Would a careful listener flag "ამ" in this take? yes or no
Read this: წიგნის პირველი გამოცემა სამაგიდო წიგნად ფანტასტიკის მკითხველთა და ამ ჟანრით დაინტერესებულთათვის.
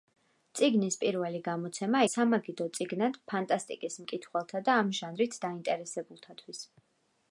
no